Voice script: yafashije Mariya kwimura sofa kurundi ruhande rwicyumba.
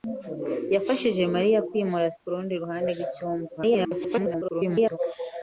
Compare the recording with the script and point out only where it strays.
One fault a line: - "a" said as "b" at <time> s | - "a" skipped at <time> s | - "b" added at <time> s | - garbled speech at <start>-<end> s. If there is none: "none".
- "sofa" skipped at 2.1 s
- garbled speech at 3.6-5.0 s